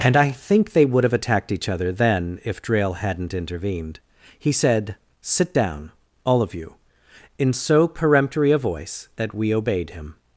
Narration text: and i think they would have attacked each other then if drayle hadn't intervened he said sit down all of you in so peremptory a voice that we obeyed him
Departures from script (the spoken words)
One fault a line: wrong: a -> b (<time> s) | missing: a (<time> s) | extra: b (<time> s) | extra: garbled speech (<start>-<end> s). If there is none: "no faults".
no faults